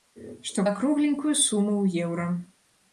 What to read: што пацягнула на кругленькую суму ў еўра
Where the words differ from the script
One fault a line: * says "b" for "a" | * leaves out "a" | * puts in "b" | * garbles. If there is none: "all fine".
* leaves out "пацягнула"